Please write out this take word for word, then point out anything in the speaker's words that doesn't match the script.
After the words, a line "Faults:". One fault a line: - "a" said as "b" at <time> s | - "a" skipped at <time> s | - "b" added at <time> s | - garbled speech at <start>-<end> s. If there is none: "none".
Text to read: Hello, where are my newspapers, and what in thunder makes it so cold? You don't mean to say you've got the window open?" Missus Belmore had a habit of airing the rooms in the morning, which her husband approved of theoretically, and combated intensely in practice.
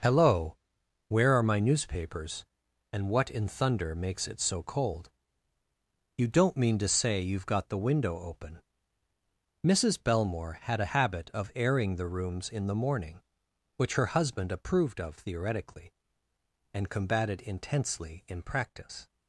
Hello, where are my newspapers, and what in thunder makes it so cold? You don't mean to say you've got the window open?" Missus Belmore had a habit of airing the rooms in the morning, which her husband approved of theoretically, and combated intensely in practice.
Faults:
none